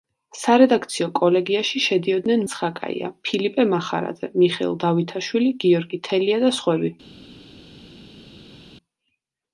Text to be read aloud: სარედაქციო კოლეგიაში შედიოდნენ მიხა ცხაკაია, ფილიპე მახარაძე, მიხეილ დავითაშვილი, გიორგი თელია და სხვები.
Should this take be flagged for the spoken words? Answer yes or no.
yes